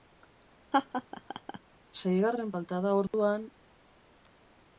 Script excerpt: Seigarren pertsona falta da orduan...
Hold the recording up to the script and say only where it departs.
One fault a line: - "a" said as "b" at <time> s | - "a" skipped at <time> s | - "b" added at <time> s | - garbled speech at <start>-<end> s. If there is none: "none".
- "pertsona" skipped at 2.5 s